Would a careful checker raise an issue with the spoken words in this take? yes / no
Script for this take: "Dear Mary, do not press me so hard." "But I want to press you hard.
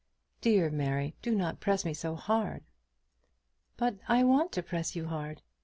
no